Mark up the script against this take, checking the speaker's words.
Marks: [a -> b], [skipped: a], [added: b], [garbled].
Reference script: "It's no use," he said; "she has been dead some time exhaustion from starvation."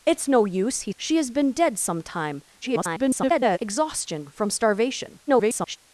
"It's no use," he [skipped: said;] "she has been dead some time [garbled] exhaustion from starvation." [garbled]